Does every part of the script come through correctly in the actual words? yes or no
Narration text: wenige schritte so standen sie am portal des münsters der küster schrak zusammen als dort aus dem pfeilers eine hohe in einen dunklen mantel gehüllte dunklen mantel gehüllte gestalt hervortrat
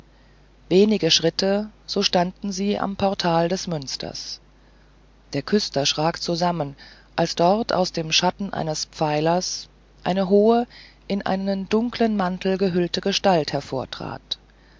no